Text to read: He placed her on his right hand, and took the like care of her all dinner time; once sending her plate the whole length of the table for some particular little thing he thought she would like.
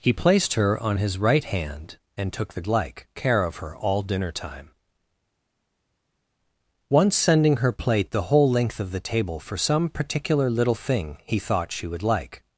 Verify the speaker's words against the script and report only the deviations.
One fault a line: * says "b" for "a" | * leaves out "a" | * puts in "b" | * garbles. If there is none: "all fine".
all fine